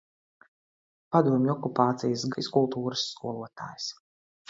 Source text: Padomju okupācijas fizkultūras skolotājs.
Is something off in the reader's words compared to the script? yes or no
no